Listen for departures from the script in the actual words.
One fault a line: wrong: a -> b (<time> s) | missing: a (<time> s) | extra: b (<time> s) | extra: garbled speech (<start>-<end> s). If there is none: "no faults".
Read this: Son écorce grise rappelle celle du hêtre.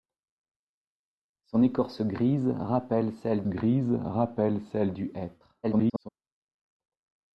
extra: grise rappelle celle (3.4 s)
extra: garbled speech (5.6-6.1 s)